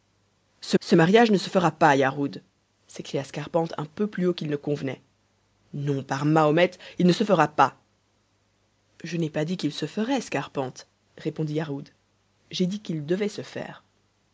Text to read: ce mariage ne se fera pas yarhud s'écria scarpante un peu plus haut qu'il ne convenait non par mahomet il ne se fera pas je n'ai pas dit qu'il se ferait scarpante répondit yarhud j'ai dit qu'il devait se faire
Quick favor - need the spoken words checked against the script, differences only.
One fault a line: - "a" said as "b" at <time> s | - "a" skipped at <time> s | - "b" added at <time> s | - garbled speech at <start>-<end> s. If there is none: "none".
- "ce" added at 0.8 s